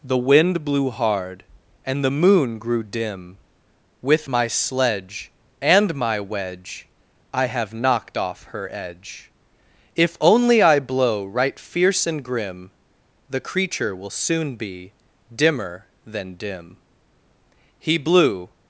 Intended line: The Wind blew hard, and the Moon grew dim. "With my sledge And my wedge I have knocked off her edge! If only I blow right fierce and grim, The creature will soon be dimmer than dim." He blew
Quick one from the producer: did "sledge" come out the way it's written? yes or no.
yes